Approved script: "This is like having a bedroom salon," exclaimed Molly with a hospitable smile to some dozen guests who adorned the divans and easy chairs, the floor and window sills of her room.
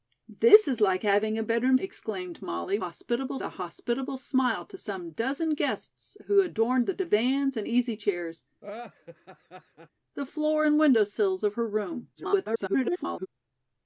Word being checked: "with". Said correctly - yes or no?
no